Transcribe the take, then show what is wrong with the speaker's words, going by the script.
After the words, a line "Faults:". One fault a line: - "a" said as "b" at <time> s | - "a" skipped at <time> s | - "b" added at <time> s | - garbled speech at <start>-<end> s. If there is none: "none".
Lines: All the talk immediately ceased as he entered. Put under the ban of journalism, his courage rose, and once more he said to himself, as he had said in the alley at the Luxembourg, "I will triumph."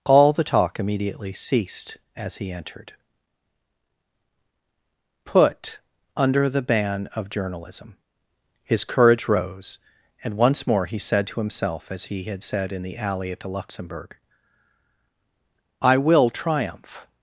All the talk immediately ceased as he entered. Put under the ban of journalism, his courage rose, and once more he said to himself, as he had said in the alley at the Luxembourg, "I will triumph."
Faults:
none